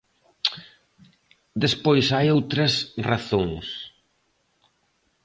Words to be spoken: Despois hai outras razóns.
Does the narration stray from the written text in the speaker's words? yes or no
no